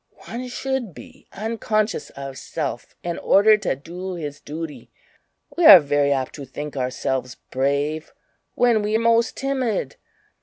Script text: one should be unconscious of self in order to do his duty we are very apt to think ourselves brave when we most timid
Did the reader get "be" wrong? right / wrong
right